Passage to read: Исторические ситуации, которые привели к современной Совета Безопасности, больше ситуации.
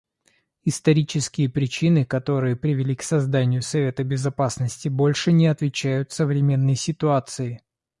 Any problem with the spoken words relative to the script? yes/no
yes